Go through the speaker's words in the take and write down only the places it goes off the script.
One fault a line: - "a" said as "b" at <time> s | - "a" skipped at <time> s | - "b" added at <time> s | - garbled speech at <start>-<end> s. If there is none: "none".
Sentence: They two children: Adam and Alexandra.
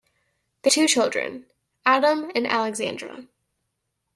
none